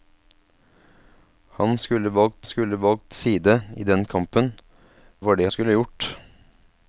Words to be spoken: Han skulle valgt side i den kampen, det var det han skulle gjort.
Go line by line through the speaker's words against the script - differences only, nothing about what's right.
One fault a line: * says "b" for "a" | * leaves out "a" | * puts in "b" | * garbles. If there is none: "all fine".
* puts in "skulle valgt"
* leaves out "det"
* leaves out "han"